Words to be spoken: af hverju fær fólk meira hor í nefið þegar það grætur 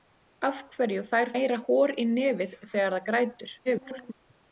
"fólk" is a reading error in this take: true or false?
true